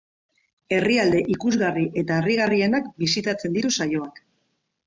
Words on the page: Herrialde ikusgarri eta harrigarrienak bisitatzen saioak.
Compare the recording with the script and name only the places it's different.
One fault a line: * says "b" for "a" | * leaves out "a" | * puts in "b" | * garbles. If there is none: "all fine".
* puts in "ditu"